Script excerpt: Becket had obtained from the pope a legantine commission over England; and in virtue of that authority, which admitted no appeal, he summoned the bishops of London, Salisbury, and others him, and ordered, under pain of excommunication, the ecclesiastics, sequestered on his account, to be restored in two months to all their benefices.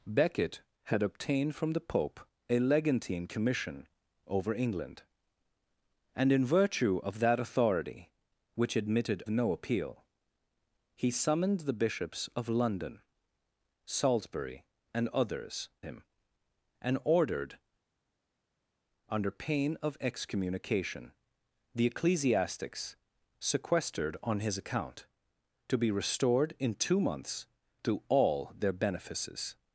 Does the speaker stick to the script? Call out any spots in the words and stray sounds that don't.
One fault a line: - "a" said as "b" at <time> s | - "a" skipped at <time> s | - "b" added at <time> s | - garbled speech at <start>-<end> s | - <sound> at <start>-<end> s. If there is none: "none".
none